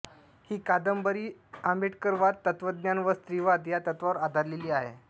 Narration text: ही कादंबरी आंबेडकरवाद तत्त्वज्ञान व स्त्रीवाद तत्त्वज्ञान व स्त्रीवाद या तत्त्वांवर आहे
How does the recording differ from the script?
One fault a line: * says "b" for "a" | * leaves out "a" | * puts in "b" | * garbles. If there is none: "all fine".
* leaves out "तत्त्वज्ञान व स्त्रीवाद"
* puts in "आधारलेली"